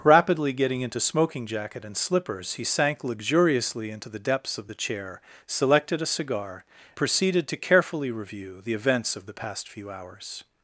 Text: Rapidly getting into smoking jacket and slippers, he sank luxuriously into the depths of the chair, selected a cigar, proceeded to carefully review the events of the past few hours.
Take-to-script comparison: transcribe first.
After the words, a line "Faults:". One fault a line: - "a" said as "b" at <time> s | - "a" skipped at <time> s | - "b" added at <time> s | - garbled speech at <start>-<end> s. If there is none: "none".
Rapidly getting into smoking jacket and slippers, he sank luxuriously into the depths of the chair, selected a cigar, proceeded to carefully review the events of the past few hours.
Faults:
none